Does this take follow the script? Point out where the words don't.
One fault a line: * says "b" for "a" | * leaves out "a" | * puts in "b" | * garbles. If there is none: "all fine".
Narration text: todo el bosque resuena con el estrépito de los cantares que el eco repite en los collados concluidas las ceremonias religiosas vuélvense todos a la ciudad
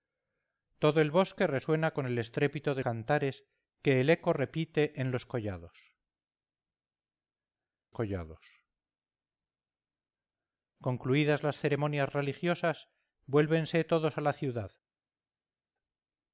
* leaves out "los"
* puts in "collados"